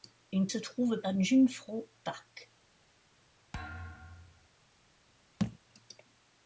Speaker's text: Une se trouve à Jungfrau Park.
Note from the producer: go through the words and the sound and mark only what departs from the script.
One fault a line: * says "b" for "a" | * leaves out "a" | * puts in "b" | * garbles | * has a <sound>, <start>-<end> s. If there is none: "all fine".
* has a thud, 3.5-4.5 s
* has a thud, 5.4-5.6 s